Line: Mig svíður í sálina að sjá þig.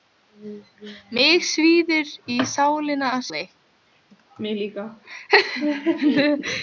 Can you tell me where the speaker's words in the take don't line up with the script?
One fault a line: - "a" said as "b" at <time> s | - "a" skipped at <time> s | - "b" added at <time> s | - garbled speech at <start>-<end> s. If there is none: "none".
- "sjá" skipped at 3.2 s